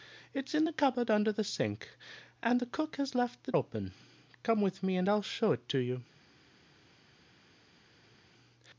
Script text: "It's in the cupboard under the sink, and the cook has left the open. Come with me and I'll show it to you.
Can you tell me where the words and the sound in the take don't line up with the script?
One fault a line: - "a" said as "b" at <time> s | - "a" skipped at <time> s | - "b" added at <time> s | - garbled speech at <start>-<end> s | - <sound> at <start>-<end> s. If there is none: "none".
none